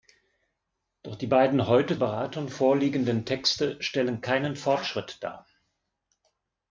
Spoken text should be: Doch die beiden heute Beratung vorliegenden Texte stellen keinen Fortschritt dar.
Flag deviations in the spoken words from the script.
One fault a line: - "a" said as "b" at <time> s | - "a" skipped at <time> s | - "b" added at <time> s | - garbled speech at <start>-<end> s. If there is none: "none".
none